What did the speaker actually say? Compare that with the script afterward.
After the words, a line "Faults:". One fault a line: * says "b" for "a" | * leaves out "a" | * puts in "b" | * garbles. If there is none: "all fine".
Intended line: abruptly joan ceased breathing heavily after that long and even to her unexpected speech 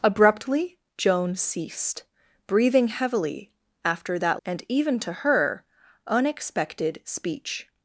abruptly joan ceased breathing heavily after that and even to her unexpected speech
Faults:
* leaves out "long"